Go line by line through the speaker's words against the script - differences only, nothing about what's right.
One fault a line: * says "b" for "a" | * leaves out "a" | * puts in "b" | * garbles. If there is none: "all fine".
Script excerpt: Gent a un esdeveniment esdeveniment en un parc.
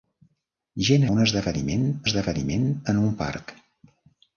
all fine